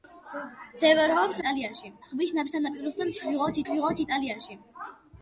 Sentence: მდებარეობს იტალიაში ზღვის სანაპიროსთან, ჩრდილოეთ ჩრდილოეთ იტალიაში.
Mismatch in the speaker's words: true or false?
false